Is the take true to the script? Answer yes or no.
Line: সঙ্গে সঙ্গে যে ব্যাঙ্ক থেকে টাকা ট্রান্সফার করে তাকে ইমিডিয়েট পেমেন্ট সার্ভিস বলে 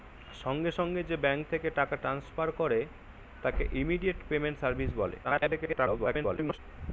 no